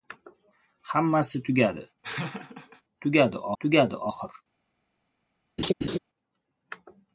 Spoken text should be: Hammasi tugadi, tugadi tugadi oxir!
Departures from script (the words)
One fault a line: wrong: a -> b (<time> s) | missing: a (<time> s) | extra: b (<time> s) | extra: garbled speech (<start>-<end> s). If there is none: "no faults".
no faults